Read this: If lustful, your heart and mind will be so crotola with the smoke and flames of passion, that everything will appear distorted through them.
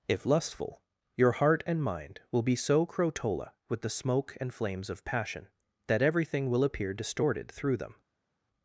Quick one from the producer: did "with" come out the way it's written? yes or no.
yes